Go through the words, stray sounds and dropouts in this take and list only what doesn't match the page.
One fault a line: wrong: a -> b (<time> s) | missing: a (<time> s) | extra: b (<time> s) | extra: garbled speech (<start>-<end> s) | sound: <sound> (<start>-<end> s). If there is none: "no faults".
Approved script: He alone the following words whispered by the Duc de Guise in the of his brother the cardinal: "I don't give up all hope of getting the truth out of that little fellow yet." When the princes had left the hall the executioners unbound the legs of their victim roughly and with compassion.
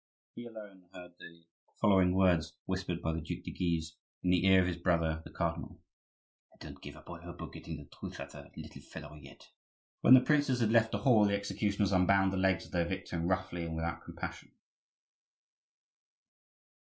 extra: heard (0.9 s)
extra: ear (4.5 s)
wrong: with -> without (13.7 s)